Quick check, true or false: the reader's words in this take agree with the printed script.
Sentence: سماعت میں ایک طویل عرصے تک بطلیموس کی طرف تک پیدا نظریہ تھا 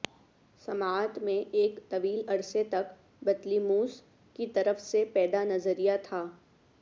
false